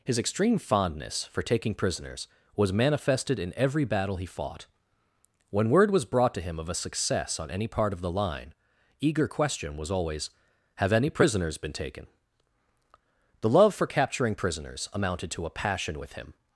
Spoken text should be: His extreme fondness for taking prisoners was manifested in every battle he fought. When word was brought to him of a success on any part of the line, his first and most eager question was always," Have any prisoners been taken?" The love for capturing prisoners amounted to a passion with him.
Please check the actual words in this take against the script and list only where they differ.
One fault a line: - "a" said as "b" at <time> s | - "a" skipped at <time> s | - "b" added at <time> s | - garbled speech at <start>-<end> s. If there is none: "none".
- "his first and most" skipped at 8.6 s